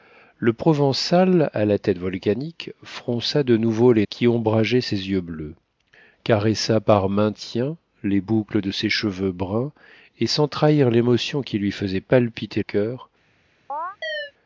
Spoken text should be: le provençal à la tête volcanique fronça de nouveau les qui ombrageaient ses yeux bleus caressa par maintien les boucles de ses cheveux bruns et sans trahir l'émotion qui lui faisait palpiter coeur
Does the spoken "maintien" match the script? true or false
true